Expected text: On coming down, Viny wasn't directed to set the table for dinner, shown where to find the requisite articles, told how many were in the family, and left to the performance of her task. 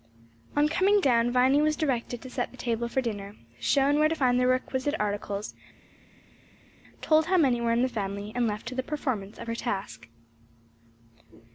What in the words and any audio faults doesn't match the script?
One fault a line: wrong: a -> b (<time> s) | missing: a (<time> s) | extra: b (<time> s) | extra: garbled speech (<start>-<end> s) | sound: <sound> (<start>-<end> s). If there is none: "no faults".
wrong: wasn't -> was (1.6 s)